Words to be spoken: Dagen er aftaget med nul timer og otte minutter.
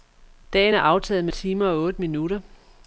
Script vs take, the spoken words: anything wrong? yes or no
yes